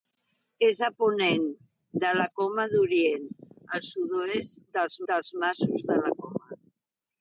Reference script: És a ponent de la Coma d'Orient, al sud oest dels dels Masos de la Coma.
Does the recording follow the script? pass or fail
pass